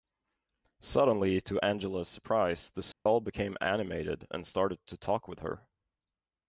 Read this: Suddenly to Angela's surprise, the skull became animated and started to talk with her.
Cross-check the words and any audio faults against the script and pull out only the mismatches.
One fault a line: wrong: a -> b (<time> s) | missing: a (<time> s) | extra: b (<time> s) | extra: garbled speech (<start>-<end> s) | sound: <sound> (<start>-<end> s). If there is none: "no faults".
sound: dropout (2.9-3.1 s)